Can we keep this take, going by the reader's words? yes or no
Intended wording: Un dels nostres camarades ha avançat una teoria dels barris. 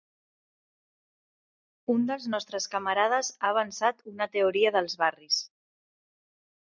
yes